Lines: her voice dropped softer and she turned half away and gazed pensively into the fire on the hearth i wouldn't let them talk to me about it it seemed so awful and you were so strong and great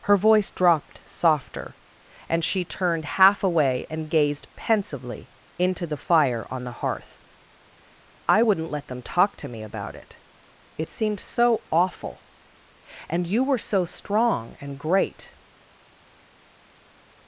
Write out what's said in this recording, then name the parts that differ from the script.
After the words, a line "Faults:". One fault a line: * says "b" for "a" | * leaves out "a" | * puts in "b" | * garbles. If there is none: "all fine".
her voice dropped softer and she turned half away and gazed pensively into the fire on the hearth i wouldn't let them talk to me about it it seemed so awful and you were so strong and great
Faults:
all fine